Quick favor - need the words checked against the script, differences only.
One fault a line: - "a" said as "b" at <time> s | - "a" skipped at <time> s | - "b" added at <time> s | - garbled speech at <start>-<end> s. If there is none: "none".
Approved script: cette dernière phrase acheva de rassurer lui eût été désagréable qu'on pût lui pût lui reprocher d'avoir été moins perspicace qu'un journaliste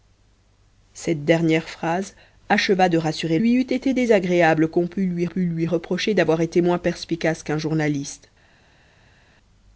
none